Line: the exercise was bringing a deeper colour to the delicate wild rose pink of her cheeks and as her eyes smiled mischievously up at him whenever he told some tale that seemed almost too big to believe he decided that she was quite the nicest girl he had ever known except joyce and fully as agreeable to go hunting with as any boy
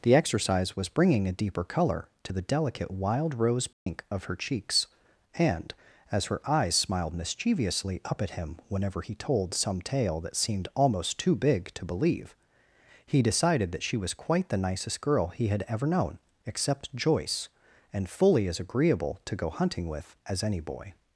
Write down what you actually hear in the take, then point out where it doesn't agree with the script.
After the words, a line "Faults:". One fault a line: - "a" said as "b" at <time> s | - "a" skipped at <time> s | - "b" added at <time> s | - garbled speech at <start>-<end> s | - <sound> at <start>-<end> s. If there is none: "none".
the exercise was bringing a deeper colour to the delicate wild rose pink of her cheeks and as her eyes smiled mischievously up at him whenever he told some tale that seemed almost too big to believe he decided that she was quite the nicest girl he had ever known except joyce and fully as agreeable to go hunting with as any boy
Faults:
- dropout at 3.7-3.9 s